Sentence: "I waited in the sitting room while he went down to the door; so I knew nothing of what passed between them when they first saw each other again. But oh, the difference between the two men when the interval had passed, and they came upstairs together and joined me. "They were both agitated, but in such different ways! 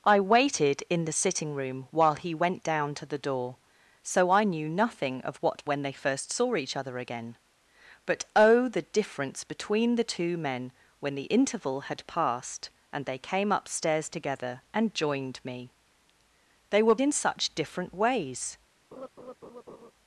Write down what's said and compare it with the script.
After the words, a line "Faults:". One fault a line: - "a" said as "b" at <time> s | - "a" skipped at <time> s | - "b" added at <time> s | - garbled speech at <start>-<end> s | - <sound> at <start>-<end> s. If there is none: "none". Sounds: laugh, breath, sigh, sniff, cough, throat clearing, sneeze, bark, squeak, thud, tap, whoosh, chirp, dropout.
"I waited in the sitting room while he went down to the door; so I knew nothing of what when they first saw each other again. But oh, the difference between the two men when the interval had passed, and they came upstairs together and joined me. "They were in such different ways!
Faults:
- "passed between them" skipped at 5.6 s
- "both agitated but" skipped at 17.0 s
- laugh at 18.9-19.9 s